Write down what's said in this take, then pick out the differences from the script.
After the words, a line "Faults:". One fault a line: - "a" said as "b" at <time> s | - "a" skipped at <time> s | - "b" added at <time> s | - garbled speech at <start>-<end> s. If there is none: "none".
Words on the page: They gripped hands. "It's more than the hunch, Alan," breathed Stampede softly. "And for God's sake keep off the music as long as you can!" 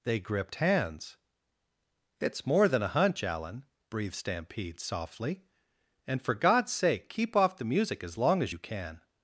They gripped hands. "It's more than a hunch, Alan," breathed Stampede softly. "And for God's sake keep off the music as long as you can!"
Faults:
- "the" said as "a" at 2.8 s